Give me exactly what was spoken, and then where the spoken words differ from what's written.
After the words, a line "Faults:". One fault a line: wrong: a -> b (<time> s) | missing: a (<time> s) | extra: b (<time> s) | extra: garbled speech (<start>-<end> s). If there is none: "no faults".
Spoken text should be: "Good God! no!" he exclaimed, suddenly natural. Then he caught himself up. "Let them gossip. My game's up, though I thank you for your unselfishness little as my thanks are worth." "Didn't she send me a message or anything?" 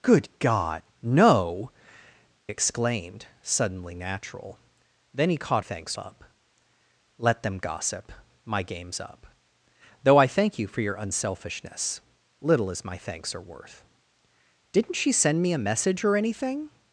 "Good God! no!" exclaimed, suddenly natural. Then he caught thanks up. "Let them gossip. My game's up, though I thank you for your unselfishness little as my thanks are worth." "Didn't she send me a message or anything?"
Faults:
missing: he (1.7 s)
wrong: himself -> thanks (5.6 s)